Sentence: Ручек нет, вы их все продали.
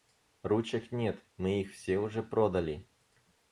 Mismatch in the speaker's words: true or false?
true